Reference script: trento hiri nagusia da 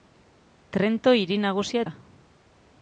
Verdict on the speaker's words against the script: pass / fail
pass